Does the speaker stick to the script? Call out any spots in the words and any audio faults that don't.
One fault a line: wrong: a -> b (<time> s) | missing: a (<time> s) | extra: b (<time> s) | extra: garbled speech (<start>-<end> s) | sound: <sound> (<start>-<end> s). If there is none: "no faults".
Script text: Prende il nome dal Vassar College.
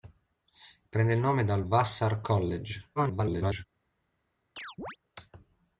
extra: garbled speech (3.0-3.6 s)
sound: chirp (4.6-5.0 s)